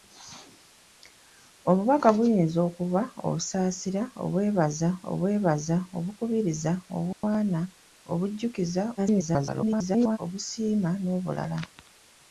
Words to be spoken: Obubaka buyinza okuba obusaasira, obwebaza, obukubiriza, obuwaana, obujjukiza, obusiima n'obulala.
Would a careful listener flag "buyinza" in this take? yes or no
no